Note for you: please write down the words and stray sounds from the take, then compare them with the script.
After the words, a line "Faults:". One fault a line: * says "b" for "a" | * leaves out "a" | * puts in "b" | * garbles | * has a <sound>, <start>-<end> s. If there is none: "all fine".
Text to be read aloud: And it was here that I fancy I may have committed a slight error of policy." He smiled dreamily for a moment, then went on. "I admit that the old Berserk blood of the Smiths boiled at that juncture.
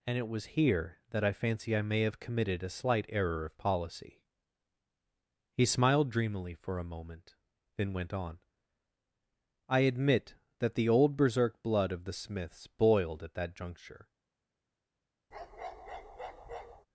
And it was here that I fancy I may have committed a slight error of policy." He smiled dreamily for a moment, then went on. "I admit that the old Berserk blood of the Smiths boiled at that juncture.
Faults:
* has a bark, 15.3-16.9 s